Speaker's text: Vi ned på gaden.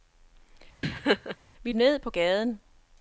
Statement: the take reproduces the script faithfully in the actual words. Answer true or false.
true